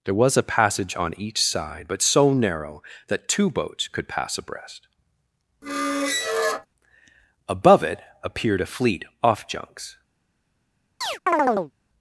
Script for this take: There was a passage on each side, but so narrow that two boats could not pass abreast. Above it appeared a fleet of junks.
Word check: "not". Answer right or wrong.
wrong